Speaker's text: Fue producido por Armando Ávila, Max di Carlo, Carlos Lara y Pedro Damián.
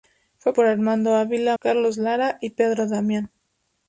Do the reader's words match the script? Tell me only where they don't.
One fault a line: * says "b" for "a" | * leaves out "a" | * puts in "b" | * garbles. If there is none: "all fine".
* leaves out "producido"
* leaves out "Max di Carlo"